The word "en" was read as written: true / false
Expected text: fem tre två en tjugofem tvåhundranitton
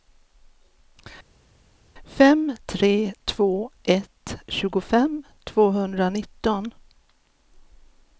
false